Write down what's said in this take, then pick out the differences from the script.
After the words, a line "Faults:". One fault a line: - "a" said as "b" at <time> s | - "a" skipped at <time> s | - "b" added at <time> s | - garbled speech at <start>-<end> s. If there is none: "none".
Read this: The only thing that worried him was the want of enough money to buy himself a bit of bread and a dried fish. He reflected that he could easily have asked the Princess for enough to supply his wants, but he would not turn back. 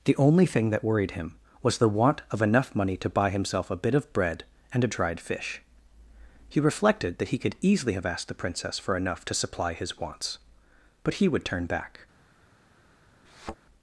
The only thing that worried him was the want of enough money to buy himself a bit of bread and a dried fish. He reflected that he could easily have asked the Princess for enough to supply his wants, but he would turn back.
Faults:
- "not" skipped at 11.4 s